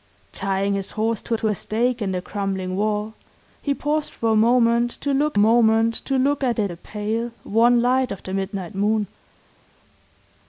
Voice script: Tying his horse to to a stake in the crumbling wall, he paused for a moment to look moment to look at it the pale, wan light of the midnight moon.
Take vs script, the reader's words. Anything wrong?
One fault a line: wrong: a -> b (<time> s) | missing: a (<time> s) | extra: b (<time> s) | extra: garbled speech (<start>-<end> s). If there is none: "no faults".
no faults